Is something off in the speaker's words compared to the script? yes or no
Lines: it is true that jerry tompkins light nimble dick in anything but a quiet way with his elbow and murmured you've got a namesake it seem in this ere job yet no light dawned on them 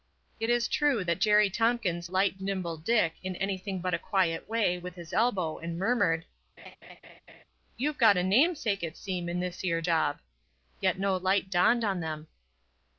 no